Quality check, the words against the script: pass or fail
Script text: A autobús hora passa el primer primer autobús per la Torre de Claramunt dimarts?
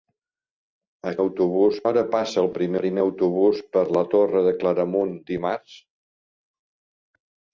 pass